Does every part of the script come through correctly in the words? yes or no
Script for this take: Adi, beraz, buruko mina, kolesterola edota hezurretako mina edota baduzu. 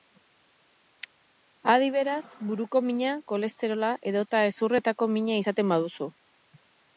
no